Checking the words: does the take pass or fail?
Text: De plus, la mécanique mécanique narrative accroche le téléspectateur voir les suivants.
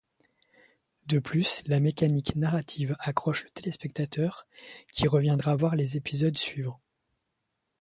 fail